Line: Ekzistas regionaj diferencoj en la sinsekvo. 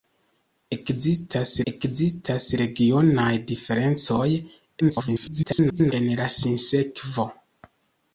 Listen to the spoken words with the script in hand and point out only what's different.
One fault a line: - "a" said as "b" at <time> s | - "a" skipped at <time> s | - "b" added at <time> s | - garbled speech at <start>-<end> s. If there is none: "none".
- "ekzistas" added at 1.7 s
- garbled speech at 4.8-5.9 s